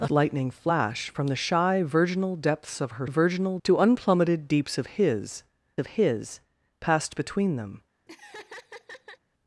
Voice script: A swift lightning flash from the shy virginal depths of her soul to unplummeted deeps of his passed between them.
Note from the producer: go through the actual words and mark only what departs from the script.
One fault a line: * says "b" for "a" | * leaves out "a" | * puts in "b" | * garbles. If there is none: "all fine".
* leaves out "swift"
* says "virginal" for "soul"
* puts in "of his"